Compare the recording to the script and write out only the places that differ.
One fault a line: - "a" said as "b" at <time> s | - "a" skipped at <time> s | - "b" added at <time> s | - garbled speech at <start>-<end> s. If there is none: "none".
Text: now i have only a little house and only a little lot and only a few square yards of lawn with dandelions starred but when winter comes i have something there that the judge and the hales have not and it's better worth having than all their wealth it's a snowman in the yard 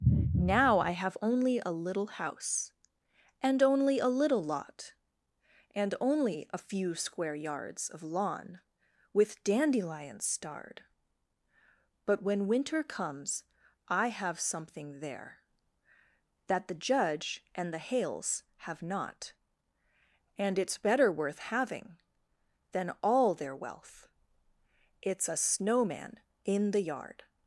none